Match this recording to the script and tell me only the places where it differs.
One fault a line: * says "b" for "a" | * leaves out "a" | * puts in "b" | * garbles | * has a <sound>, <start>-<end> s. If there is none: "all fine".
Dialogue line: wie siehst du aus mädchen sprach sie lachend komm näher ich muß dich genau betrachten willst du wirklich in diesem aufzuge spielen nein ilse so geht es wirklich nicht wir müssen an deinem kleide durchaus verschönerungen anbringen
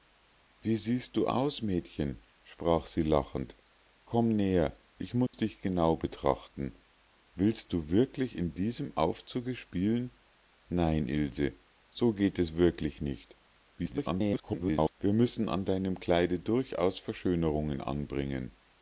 * has a dropout, 5.3-5.3 s
* garbles